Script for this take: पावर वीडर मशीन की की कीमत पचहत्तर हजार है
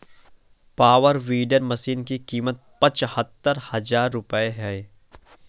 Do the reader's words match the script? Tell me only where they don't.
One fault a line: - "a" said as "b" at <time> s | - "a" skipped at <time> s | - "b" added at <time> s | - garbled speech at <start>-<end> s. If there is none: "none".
- "की" skipped at 2.2 s
- "रूपये" added at 4.1 s